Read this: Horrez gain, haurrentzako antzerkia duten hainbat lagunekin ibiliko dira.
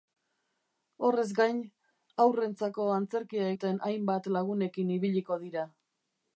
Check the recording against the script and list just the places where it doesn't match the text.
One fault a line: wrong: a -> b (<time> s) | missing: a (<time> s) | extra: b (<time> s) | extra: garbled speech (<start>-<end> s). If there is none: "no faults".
no faults